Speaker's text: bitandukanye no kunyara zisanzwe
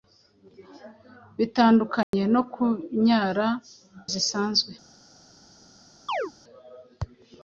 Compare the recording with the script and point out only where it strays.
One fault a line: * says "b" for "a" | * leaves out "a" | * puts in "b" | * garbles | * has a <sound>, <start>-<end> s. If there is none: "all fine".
* has a dropout, 2.0-2.1 s
* has a chirp, 6.1-6.3 s